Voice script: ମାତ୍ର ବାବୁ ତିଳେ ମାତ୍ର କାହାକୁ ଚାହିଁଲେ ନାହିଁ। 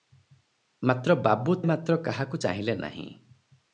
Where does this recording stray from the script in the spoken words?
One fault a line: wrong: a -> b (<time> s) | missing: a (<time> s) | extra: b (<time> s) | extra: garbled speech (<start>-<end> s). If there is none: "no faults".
missing: ତିଳେ (1.6 s)